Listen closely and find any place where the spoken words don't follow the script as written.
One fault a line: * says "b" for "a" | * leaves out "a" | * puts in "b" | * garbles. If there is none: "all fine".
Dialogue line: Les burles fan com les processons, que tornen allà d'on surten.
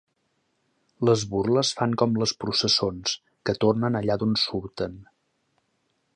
all fine